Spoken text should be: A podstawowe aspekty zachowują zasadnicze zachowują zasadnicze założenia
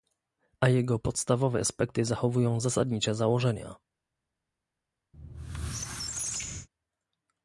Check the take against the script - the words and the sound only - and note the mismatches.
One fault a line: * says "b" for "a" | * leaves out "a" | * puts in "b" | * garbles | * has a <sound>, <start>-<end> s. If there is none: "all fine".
* puts in "jego"
* leaves out "zachowują zasadnicze"
* has a squeak, 5.1-6.7 s